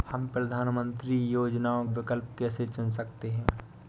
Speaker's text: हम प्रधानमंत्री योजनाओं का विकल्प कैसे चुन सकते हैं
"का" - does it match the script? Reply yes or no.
no